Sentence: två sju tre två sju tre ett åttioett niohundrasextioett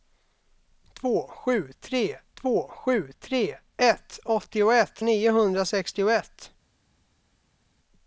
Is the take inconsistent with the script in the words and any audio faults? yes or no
no